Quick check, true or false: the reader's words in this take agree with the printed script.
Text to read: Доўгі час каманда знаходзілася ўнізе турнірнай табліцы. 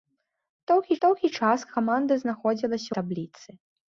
false